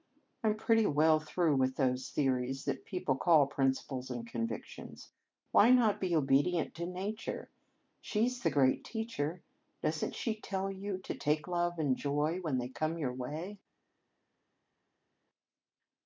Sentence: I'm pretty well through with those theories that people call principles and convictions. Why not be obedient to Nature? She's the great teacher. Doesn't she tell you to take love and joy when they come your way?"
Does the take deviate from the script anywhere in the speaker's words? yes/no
no